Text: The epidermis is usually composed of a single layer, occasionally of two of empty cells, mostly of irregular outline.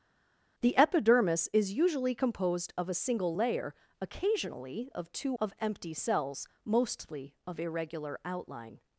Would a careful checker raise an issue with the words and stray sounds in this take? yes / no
no